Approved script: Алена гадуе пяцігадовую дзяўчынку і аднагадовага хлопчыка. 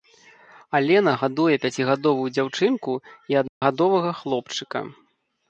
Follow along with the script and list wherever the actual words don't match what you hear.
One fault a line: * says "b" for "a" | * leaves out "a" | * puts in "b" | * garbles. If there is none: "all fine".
all fine